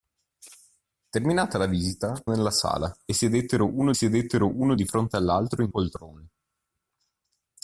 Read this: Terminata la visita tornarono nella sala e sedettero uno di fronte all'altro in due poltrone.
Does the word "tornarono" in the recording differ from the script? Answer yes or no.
yes